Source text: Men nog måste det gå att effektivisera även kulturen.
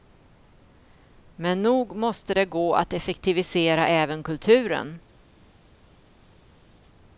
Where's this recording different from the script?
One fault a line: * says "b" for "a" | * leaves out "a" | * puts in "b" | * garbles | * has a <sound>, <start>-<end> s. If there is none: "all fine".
all fine